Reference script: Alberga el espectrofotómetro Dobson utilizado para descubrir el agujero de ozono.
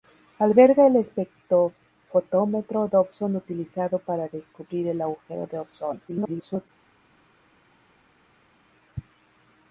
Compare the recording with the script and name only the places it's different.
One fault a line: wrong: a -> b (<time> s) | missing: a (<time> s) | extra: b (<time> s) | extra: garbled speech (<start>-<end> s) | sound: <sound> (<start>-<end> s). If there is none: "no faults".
extra: garbled speech (6.1-6.7 s)